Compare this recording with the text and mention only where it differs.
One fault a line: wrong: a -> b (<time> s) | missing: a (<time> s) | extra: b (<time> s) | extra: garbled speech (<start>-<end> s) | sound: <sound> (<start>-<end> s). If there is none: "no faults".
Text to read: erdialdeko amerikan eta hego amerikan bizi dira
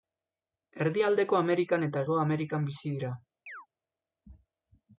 sound: chirp (3.5-3.7 s)